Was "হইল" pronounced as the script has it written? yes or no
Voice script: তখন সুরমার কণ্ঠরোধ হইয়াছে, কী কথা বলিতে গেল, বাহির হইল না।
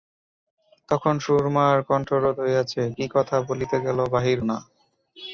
no